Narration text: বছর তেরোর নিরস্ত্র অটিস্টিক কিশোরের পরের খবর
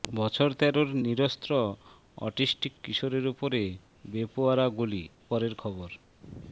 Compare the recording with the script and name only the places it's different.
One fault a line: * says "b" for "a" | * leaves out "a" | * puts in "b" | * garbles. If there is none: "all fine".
* puts in "উপরে বেপরোয়া গুলি"